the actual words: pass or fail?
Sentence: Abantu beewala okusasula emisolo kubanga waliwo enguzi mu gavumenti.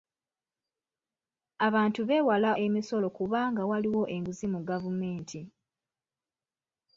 fail